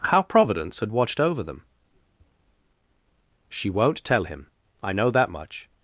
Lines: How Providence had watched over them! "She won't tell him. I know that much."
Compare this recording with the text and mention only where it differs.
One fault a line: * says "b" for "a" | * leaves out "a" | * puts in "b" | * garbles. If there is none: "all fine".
all fine